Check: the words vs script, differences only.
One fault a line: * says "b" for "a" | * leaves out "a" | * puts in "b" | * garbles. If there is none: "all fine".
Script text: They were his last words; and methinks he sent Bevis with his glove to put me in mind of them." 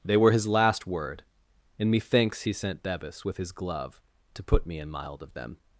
* says "word" for "words"
* says "mild" for "mind"